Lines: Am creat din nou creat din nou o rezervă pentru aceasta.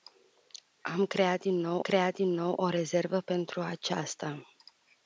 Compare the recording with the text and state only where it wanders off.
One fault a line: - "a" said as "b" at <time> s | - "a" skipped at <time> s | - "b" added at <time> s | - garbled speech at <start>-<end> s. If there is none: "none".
none